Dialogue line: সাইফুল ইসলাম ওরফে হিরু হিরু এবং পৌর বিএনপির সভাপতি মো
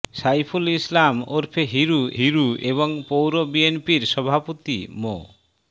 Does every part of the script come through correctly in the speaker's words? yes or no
yes